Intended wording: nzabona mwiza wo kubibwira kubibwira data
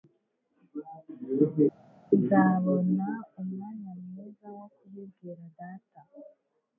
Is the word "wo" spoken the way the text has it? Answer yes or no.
yes